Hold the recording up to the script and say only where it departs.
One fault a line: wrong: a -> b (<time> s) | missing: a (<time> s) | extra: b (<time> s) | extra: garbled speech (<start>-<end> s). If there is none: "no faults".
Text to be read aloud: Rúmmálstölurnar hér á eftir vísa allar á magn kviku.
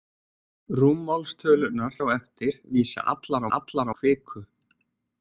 missing: hér (1.9 s)
wrong: magn -> allar (3.6 s)